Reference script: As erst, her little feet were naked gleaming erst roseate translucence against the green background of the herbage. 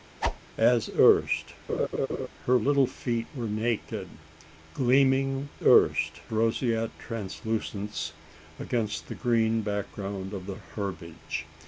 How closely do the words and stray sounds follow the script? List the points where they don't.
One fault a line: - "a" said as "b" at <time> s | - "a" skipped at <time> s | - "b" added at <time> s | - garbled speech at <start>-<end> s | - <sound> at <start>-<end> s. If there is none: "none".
- whoosh at 0.2-0.4 s
- laugh at 1.7-2.3 s